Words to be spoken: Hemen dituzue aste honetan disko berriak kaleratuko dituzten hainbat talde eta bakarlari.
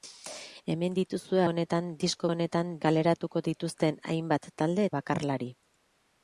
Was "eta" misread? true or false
true